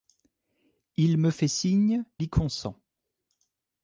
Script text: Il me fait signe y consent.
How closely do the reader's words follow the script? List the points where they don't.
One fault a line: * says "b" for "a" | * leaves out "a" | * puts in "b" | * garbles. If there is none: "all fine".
all fine